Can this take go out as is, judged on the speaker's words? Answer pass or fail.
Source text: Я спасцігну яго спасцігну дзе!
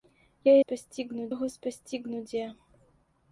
pass